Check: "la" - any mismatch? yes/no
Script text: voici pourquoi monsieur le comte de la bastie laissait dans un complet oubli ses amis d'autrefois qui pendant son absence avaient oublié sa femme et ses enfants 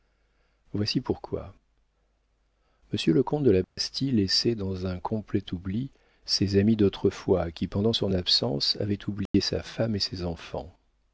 no